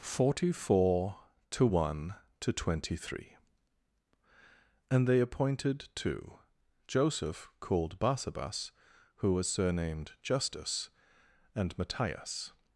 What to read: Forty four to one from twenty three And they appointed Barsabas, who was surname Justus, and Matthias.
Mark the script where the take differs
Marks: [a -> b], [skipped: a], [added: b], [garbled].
Forty four to one [from -> to] twenty three And they appointed [added: two Joseph called] Barsabas, who was [surname -> surnamed] Justus, and Matthias.